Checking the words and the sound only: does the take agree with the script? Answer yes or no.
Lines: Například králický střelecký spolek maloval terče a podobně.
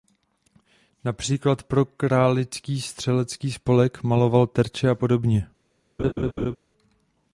no